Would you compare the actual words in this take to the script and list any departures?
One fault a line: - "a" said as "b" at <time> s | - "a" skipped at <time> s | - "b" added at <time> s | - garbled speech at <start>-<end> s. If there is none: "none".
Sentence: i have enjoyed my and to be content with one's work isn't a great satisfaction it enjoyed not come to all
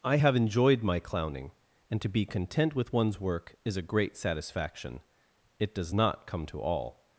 - "clowning" added at 1.0 s
- "isn't" said as "is" at 3.6 s
- "enjoyed" said as "does" at 5.7 s